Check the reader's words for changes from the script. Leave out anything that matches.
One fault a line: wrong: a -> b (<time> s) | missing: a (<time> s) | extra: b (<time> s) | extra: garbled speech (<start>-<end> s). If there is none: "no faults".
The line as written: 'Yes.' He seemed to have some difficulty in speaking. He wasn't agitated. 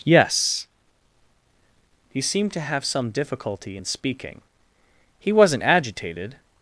no faults